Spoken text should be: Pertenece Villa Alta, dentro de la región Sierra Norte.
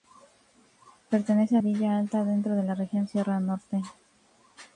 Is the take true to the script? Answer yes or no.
yes